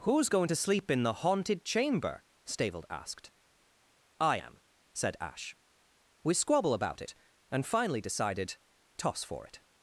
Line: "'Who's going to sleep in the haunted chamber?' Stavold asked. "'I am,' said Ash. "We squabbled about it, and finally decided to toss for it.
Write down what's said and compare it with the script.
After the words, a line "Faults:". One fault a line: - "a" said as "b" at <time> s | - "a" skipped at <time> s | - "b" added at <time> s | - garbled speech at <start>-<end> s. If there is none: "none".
"'Who's going to sleep in the haunted chamber?' Stavold asked. "'I am,' said Ash. "We squabble about it, and finally decided toss for it.
Faults:
- "squabbled" said as "squabble" at 6.3 s
- "to" skipped at 8.6 s